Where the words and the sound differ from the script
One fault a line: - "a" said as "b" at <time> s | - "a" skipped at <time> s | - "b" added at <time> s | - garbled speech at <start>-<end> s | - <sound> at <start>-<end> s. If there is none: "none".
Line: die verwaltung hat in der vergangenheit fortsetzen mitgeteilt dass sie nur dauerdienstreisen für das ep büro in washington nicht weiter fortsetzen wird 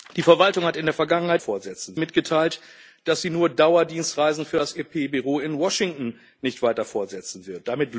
none